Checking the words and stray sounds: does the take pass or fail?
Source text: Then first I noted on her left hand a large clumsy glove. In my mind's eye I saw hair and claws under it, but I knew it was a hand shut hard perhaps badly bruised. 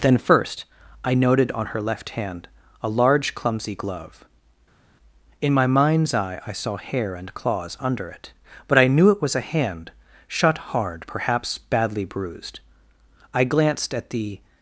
fail